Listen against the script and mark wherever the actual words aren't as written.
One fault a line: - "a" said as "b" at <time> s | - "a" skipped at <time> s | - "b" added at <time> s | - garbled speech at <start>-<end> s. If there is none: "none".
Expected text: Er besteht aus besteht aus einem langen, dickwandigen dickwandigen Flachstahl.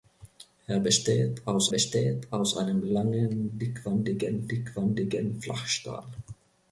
none